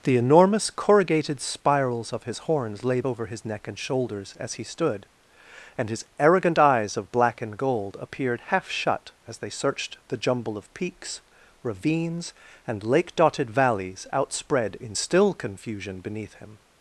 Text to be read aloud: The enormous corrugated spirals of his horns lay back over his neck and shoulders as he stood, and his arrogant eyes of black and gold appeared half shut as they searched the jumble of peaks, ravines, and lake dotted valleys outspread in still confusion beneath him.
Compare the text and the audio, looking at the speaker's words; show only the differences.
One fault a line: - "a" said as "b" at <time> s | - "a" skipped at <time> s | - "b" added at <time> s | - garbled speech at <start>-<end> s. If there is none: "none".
- "back" skipped at 3.0 s